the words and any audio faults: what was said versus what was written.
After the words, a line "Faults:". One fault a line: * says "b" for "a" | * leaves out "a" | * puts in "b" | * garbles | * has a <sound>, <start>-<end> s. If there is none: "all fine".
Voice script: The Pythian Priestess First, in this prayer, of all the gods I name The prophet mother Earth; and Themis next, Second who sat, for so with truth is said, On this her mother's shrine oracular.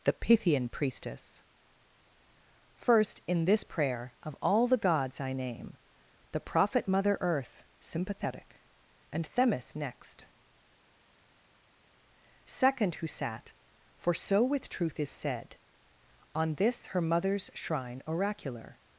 The Pythian Priestess First, in this prayer, of all the gods I name The prophet mother Earth; sympathetic and Themis next, Second who sat, for so with truth is said, On this her mother's shrine oracular.
Faults:
* puts in "sympathetic"